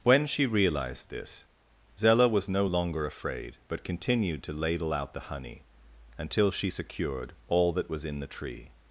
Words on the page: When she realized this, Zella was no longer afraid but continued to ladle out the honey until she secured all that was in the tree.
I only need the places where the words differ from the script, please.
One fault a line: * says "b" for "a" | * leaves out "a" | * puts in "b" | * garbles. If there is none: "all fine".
all fine